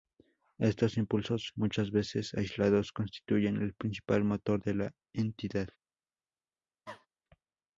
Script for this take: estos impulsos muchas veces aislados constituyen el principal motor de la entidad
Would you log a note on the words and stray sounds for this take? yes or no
yes